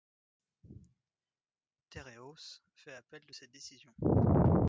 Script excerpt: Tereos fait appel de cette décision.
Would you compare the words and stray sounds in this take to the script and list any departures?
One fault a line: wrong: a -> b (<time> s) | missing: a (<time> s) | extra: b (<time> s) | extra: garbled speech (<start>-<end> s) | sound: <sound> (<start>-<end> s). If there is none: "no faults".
no faults